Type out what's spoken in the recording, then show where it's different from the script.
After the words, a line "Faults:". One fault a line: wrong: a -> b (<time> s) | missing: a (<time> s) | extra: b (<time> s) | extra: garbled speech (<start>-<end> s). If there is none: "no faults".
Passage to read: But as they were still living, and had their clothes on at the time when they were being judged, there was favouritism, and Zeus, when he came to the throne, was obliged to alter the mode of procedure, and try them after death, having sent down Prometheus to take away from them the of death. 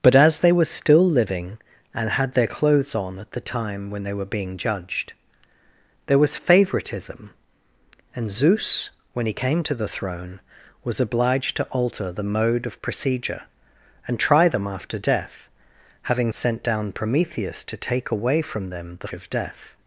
But as they were still living, and had their clothes on at the time when they were being judged, there was favouritism, and Zeus, when he came to the throne, was obliged to alter the mode of procedure, and try them after death, having sent down Prometheus to take away from them the of death.
Faults:
no faults